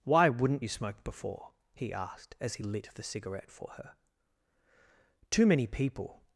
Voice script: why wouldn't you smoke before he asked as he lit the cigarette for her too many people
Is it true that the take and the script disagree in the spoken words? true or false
false